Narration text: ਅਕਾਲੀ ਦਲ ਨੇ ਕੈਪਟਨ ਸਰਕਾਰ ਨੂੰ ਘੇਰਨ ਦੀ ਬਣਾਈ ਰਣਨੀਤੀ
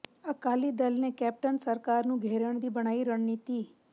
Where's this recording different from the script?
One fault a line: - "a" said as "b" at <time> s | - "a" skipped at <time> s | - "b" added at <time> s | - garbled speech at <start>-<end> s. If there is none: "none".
none